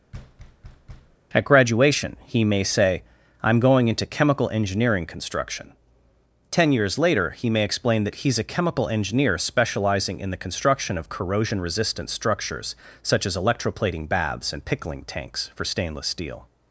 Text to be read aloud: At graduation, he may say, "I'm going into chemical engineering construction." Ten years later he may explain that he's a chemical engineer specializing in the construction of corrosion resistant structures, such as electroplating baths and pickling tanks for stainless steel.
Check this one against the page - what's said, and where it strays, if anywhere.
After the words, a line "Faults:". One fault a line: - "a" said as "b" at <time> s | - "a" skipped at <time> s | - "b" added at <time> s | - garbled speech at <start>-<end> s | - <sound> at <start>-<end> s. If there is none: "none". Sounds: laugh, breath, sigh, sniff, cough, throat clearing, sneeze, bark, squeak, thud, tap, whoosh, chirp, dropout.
At graduation, he may say, "I'm going into chemical engineering construction." Ten years later he may explain that he's a chemical engineer specializing in the construction of corrosion resistant structures, such as electroplating baths and pickling tanks for stainless steel.
Faults:
- thud at 0.1-1.2 s